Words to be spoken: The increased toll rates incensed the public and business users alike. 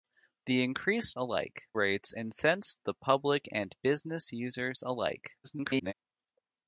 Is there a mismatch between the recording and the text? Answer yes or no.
yes